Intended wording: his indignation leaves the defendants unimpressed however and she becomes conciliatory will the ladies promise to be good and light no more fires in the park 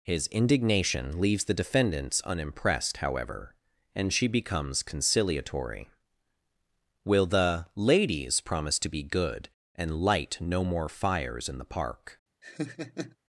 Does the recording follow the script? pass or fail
pass